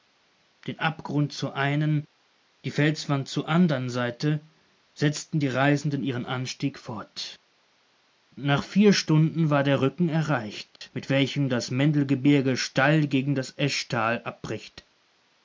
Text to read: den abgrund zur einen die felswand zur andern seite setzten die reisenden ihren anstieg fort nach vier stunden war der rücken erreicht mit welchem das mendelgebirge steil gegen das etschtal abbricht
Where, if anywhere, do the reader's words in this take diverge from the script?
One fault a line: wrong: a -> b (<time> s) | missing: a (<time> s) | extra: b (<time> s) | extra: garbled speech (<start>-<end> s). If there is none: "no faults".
no faults